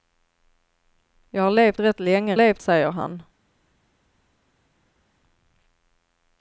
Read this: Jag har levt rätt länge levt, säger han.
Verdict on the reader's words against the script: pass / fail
pass